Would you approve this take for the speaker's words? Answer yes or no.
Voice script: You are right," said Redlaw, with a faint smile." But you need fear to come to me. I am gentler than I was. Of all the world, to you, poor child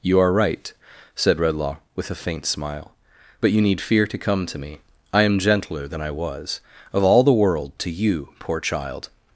yes